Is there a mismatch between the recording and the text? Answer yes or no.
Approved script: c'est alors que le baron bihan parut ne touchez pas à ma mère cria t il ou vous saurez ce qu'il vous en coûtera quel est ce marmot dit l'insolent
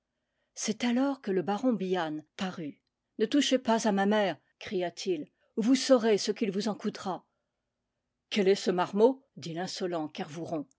no